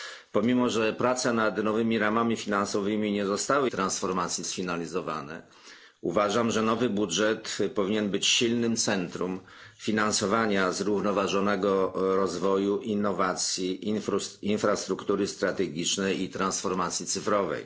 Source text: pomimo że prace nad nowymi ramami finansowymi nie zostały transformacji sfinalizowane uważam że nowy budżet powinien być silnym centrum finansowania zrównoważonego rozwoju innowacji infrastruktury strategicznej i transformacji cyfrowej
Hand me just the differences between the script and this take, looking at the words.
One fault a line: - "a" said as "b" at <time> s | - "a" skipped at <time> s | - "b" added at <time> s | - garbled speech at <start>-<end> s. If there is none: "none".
none